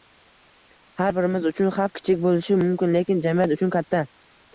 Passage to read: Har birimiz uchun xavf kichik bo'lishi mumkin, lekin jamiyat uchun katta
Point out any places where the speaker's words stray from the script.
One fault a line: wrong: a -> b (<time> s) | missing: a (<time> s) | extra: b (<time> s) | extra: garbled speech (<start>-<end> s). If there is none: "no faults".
no faults